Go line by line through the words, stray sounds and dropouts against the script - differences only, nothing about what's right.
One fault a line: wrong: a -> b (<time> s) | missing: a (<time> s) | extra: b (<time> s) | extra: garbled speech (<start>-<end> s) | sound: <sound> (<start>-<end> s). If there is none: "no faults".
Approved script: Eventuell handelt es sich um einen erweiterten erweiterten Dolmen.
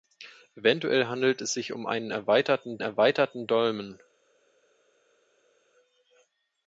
no faults